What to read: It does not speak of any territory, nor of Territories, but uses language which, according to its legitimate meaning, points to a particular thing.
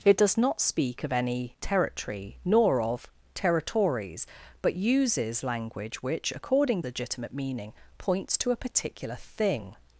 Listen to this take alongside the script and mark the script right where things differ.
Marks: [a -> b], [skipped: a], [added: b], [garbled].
It does not speak of any territory, nor of Territories, but uses language which, according [skipped: to its] legitimate meaning, points to a particular thing.